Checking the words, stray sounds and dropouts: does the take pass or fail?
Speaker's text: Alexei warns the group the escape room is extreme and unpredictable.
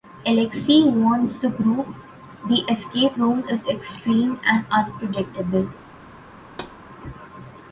fail